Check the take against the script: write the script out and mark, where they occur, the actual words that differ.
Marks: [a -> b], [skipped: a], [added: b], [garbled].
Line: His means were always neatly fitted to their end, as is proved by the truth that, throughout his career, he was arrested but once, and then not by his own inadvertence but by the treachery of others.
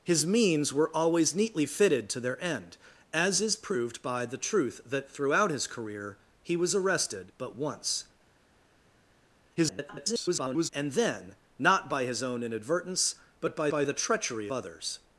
His means were always neatly fitted to their end, as is proved by the truth that, throughout his career, he was arrested but once, [garbled] and then not by his own inadvertence but by [added: by] the treachery [skipped: of] others.